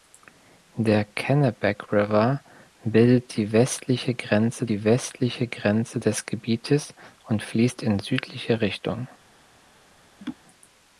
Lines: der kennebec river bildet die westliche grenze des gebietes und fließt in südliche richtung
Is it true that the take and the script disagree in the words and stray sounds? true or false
true